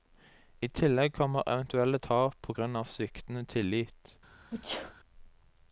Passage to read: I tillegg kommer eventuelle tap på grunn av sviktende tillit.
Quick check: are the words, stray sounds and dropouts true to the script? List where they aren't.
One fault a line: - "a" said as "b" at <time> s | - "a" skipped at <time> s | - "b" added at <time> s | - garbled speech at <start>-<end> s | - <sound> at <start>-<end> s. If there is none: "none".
- sneeze at 4.5-4.9 s